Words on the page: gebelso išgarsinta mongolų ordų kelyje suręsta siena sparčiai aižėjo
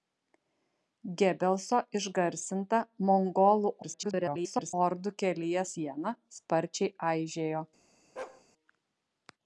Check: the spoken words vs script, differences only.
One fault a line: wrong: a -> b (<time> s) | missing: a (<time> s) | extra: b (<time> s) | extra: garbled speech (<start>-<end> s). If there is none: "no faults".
extra: garbled speech (3.8-4.7 s)
missing: suręsta (5.7 s)